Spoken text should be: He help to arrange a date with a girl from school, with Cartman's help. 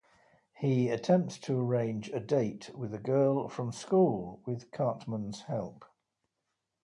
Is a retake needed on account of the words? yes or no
yes